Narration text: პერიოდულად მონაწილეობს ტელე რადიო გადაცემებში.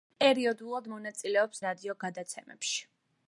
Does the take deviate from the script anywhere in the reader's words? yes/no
yes